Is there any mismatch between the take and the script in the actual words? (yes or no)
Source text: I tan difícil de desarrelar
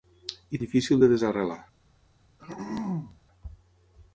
yes